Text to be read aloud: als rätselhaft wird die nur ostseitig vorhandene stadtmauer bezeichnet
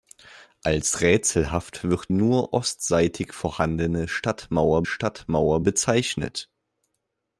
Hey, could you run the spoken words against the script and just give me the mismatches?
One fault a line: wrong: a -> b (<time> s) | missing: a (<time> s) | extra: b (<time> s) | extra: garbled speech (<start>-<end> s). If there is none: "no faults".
missing: die (2.1 s)
extra: stadtmauer (4.8 s)